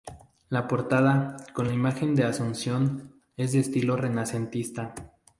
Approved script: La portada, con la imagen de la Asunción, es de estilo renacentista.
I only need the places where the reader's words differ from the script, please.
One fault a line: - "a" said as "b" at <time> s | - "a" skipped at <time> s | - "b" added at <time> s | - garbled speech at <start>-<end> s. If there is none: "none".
none